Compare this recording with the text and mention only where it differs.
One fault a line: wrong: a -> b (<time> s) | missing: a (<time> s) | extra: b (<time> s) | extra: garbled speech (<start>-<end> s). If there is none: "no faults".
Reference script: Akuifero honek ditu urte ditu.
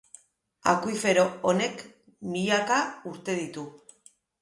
wrong: ditu -> milaka (2.3 s)